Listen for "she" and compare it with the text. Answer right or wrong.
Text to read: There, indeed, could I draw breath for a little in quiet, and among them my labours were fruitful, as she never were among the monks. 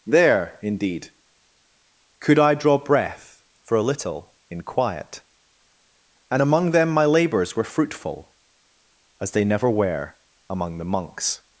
wrong